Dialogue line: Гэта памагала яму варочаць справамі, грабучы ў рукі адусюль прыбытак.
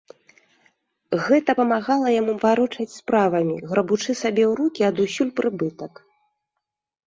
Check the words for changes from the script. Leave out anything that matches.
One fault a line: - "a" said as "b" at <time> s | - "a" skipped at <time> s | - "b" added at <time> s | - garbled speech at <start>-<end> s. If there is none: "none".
- "сабе" added at 4.3 s